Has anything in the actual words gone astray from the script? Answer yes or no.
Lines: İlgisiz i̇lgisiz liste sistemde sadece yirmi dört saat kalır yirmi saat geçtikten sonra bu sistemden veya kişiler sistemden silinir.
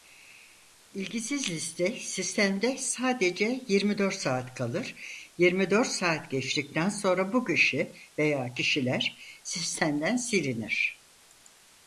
yes